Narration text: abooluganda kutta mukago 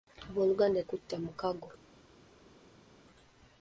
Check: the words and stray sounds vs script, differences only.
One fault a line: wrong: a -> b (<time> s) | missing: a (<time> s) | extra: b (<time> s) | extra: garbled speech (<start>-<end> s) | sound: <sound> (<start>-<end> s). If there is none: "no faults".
no faults